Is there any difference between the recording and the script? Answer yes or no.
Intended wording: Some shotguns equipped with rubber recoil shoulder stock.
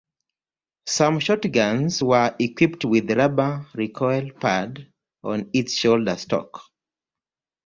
yes